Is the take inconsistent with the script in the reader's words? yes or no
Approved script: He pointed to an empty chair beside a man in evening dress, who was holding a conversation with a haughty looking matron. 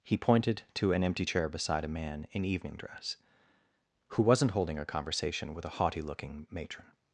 yes